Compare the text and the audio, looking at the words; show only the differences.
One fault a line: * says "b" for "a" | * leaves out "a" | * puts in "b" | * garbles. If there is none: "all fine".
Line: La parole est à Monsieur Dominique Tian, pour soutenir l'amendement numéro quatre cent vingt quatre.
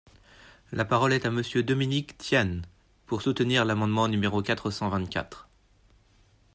all fine